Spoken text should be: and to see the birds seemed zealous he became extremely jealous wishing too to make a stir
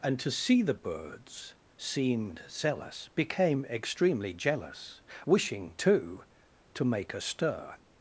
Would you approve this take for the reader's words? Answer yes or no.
no